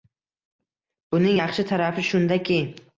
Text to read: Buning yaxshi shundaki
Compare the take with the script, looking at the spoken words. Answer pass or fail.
fail